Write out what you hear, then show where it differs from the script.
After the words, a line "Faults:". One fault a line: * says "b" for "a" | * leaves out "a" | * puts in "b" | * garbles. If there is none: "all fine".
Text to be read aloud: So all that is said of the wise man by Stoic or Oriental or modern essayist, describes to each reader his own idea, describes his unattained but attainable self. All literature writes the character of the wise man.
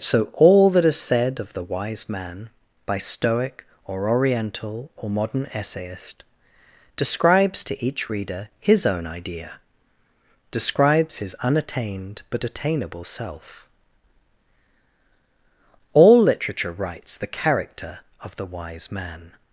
So all that is said of the wise man by Stoic or Oriental or modern essayist, describes to each reader his own idea, describes his unattained but attainable self. All literature writes the character of the wise man.
Faults:
all fine